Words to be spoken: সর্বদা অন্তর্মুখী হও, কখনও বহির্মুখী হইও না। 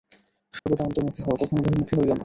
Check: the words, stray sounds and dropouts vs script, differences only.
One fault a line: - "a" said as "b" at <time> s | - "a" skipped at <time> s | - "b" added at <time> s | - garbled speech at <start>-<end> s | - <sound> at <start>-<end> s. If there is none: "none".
- dropout at 0.6-0.7 s